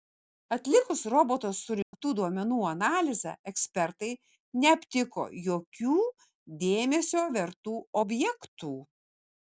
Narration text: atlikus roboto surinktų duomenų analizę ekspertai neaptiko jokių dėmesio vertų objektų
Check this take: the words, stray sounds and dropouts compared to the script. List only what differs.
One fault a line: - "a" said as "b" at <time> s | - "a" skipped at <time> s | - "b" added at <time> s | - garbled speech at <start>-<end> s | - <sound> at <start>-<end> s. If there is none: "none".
- dropout at 1.8-1.9 s